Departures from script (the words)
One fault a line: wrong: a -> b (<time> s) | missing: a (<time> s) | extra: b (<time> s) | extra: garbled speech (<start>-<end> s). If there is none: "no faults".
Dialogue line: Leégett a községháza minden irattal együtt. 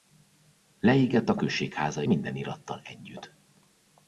no faults